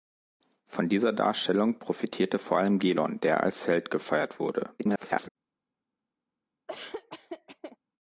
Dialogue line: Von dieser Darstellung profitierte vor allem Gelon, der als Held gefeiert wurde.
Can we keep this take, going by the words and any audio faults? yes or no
no